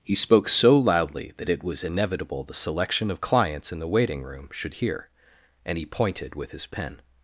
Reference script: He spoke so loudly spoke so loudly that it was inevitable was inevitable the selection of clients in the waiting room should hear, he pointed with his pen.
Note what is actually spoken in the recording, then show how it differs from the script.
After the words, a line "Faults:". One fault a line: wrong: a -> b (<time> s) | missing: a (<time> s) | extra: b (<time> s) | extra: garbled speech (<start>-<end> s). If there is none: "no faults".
He spoke so loudly that it was inevitable the selection of clients in the waiting room should hear, and he pointed with his pen.
Faults:
missing: spoke so loudly (1.3 s)
missing: was inevitable (2.4 s)
extra: and (5.7 s)